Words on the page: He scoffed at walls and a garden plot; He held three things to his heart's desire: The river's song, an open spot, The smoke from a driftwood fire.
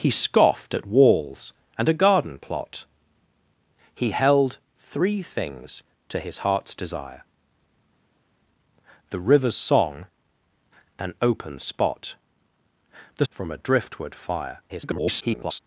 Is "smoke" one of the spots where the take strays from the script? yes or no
yes